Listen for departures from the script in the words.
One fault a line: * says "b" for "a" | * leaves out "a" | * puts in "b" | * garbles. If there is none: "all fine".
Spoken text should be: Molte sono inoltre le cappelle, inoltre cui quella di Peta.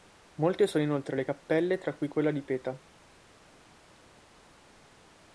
* says "tra" for "inoltre"